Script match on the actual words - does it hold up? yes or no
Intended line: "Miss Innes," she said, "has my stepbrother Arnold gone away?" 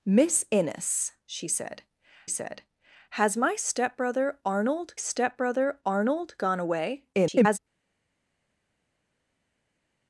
no